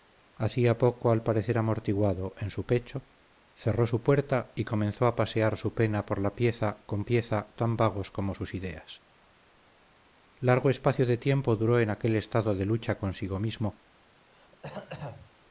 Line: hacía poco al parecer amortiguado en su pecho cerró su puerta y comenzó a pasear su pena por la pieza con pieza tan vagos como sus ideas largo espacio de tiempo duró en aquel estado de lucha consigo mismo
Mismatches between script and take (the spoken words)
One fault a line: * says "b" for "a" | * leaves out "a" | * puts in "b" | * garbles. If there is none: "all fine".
all fine